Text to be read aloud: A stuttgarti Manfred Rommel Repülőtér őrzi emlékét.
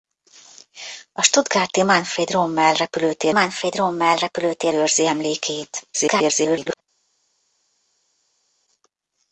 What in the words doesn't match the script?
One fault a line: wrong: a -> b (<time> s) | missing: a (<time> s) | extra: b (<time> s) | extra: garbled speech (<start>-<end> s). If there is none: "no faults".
extra: Manfred Rommel Repülőtér (3.3 s)
extra: garbled speech (5.9-6.8 s)